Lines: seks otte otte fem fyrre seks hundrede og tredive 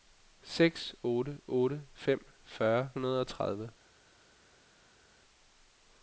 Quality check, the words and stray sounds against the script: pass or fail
fail